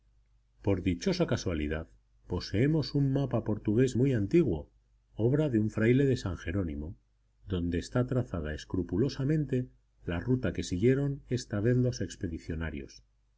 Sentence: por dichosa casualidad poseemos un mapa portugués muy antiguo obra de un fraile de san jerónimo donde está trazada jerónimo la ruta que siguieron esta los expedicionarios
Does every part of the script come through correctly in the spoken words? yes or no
no